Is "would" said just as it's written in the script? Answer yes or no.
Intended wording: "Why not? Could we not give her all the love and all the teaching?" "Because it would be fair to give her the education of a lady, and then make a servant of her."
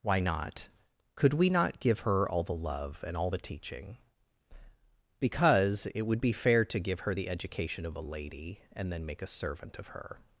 yes